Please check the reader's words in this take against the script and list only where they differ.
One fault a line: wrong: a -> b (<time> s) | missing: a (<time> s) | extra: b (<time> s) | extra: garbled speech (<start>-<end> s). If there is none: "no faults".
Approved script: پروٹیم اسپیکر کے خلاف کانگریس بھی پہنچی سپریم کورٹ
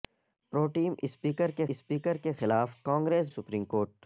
extra: اسپیکر کے (1.7 s)
missing: بھی پہنچی (3.3 s)